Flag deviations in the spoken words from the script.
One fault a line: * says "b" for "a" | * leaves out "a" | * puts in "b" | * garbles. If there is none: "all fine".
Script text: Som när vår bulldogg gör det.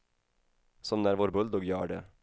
all fine